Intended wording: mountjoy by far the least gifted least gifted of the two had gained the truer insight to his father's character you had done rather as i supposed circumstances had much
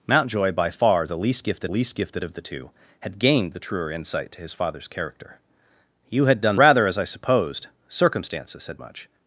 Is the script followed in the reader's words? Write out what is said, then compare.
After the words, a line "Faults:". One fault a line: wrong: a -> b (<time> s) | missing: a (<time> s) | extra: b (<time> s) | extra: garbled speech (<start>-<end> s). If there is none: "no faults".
mountjoy by far the least gifted least gifted of the two had gained the truer insight to his father's character you had done rather as i supposed circumstances had much
Faults:
no faults